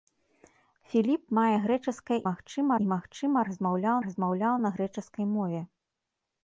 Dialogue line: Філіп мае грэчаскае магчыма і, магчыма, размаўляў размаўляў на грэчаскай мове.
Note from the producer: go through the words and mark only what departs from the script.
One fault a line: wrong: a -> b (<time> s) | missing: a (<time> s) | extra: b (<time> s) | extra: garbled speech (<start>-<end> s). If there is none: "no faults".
no faults